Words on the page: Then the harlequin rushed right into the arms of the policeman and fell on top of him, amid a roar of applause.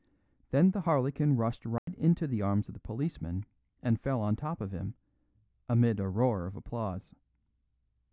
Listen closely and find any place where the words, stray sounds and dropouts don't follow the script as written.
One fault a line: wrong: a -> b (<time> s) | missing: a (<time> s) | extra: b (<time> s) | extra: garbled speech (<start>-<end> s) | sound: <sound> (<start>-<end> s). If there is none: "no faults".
sound: dropout (1.8-1.9 s)